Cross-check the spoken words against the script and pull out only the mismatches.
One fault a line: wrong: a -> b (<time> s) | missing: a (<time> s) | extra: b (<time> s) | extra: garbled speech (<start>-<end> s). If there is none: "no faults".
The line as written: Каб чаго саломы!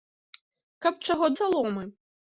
no faults